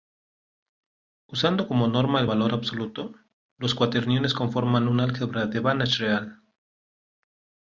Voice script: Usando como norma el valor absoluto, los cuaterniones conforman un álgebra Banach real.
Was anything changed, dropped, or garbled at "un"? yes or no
no